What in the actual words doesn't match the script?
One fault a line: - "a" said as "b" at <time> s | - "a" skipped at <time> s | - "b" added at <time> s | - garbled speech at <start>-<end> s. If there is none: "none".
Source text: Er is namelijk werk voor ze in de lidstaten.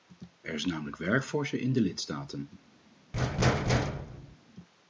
none